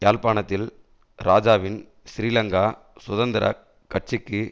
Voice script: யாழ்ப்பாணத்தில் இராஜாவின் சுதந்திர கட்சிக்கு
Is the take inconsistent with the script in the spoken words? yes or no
yes